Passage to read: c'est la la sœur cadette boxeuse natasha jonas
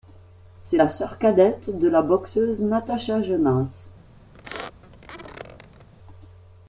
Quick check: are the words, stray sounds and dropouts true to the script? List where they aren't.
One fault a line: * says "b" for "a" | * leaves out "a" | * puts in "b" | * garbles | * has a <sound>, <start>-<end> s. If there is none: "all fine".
* leaves out "la"
* puts in "de la"
* has a squeak, 4.3-5.9 s